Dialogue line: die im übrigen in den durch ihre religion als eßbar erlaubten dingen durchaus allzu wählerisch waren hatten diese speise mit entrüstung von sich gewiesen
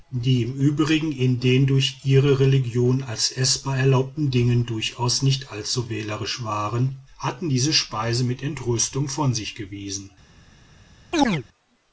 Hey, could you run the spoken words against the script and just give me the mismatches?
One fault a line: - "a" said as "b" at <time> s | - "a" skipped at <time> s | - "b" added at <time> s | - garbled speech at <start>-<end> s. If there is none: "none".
- "nicht" added at 5.2 s